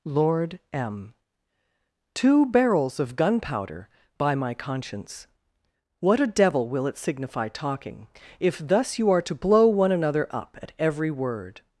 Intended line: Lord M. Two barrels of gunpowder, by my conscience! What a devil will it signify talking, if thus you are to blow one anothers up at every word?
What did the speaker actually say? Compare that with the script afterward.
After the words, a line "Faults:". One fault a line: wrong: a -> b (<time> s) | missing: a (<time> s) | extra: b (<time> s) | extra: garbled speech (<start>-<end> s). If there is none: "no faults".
Lord M. Two barrels of gunpowder, by my conscience! What a devil will it signify talking, if thus you are to blow one another up at every word?
Faults:
wrong: anothers -> another (9.9 s)